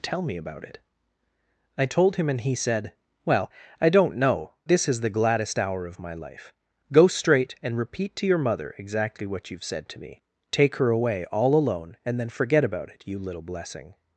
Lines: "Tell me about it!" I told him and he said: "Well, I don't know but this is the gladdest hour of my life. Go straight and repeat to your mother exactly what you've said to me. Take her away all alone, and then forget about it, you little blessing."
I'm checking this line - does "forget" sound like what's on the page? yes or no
yes